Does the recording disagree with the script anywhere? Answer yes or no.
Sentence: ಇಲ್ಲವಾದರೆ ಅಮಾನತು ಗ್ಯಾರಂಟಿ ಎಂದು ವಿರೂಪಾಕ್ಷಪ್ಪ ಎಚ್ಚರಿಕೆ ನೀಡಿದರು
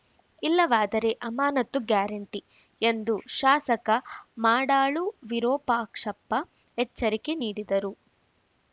yes